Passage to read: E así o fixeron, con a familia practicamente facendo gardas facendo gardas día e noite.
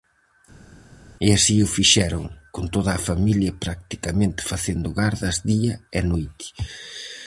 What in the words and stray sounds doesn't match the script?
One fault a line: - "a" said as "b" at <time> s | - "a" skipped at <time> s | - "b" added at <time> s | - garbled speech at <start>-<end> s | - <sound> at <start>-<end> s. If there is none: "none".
- "toda" added at 2.7 s
- "facendo gardas" skipped at 5.4 s